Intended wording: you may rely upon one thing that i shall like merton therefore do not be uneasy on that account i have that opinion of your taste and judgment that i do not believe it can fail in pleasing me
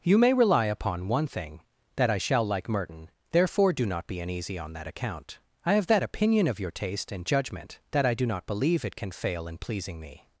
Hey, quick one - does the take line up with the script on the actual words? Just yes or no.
yes